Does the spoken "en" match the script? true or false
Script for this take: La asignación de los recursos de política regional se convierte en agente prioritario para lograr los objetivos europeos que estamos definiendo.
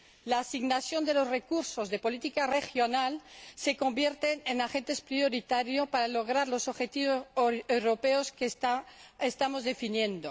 true